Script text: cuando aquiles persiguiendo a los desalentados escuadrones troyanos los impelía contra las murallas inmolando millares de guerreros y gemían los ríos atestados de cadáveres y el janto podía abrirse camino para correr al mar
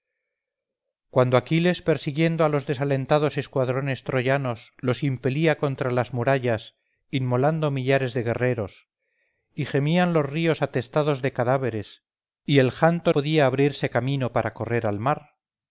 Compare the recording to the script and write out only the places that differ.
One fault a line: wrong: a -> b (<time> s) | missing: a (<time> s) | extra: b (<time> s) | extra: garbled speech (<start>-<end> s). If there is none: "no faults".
no faults